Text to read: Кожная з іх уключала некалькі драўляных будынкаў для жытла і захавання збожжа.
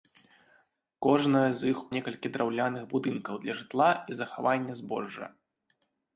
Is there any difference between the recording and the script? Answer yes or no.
yes